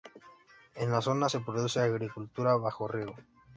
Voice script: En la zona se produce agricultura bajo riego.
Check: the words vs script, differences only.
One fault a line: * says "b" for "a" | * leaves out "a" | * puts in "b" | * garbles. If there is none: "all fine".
all fine